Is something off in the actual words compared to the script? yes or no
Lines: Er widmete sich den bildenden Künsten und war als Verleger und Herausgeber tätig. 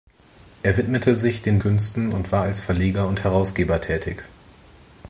yes